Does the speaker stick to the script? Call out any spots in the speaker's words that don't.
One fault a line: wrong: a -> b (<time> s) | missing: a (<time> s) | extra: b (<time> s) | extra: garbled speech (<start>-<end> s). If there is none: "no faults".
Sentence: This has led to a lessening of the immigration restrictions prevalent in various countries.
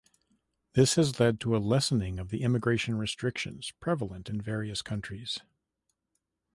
no faults